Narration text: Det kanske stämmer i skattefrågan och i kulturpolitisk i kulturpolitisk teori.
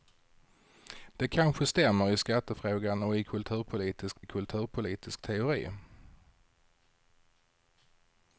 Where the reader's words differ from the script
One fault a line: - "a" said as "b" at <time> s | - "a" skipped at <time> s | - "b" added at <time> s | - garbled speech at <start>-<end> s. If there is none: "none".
none